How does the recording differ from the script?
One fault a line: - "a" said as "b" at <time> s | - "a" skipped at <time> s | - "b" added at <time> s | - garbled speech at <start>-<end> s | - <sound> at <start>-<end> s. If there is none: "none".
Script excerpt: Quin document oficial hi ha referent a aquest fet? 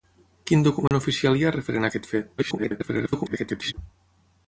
- dropout at 0.9-0.9 s
- garbled speech at 2.4-3.7 s